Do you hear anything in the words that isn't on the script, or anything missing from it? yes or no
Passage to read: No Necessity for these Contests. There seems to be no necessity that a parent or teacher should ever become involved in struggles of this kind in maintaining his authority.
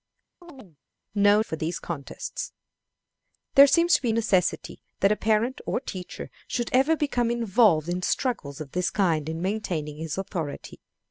yes